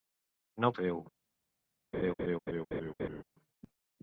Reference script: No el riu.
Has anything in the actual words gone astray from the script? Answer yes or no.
no